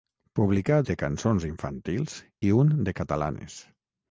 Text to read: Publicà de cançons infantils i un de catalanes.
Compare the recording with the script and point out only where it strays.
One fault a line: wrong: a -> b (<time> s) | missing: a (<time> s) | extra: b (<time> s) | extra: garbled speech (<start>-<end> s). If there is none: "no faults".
no faults